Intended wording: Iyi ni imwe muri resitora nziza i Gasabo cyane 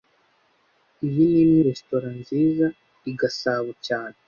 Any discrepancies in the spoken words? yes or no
yes